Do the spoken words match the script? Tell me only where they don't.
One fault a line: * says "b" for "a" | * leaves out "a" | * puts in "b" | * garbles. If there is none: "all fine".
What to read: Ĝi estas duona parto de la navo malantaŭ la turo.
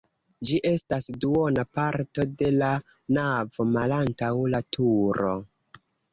all fine